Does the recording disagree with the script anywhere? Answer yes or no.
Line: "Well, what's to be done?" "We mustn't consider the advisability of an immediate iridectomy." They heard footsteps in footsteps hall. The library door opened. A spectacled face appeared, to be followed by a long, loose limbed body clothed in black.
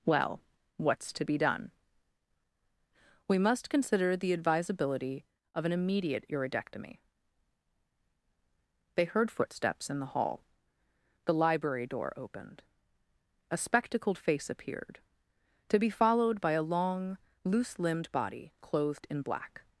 yes